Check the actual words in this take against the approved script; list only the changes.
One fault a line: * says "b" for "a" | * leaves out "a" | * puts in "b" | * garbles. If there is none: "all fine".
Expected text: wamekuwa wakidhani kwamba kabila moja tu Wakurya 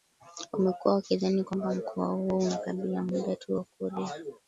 * puts in "mkoa huo una"